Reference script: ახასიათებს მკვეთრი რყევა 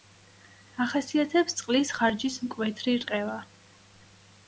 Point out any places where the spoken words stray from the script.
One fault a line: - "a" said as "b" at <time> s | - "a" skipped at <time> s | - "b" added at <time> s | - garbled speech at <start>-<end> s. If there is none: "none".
- "წყლის ხარჯის" added at 1.6 s